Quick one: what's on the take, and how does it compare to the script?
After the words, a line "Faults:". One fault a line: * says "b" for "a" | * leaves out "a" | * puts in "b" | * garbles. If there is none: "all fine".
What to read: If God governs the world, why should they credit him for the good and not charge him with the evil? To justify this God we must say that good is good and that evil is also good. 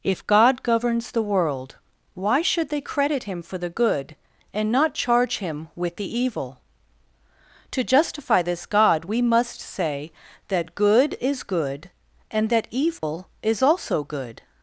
If God governs the world, why should they credit him for the good and not charge him with the evil? To justify this God we must say that good is good and that evil is also good.
Faults:
all fine